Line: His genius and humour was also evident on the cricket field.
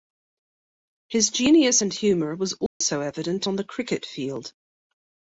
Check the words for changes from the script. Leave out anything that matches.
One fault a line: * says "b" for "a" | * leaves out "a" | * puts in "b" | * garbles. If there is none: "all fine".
all fine